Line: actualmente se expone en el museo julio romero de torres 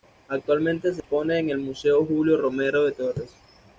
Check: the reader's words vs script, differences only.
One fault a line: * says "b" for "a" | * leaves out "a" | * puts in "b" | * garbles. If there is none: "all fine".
all fine